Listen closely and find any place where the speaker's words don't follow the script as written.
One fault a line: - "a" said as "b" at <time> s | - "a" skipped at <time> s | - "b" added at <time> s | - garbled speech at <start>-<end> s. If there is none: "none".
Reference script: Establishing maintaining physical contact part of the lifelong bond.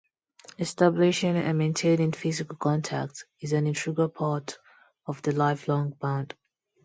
- "and" added at 1.4 s
- "is an integral" added at 3.4 s